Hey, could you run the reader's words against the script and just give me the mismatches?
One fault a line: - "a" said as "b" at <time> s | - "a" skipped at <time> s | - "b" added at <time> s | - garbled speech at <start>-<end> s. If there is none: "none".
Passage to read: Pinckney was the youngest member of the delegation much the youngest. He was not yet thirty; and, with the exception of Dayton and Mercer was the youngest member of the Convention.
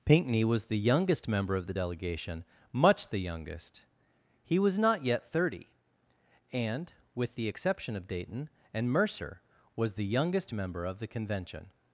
none